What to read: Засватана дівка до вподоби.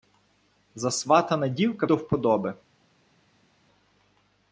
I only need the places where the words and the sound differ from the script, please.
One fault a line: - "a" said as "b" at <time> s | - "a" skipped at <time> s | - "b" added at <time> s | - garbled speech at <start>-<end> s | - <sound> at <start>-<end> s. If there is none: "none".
none